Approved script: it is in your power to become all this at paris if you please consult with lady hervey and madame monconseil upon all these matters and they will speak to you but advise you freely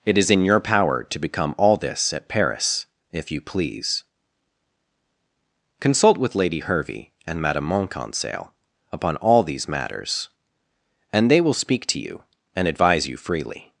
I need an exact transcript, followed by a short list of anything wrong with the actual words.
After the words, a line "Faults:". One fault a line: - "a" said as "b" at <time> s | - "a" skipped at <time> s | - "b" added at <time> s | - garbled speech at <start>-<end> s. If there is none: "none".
it is in your power to become all this at paris if you please consult with lady hervey and madame monconseil upon all these matters and they will speak to you and advise you freely
Faults:
- "but" said as "and" at 12.6 s